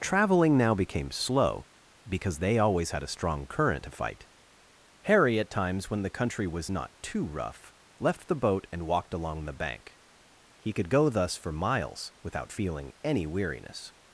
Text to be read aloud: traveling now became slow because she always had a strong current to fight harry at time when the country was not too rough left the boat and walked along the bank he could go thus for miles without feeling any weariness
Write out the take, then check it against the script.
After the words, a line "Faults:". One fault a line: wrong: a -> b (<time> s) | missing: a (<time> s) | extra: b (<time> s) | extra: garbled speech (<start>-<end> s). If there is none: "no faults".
traveling now became slow because they always had a strong current to fight harry at times when the country was not too rough left the boat and walked along the bank he could go thus for miles without feeling any weariness
Faults:
wrong: she -> they (2.4 s)
wrong: time -> times (5.5 s)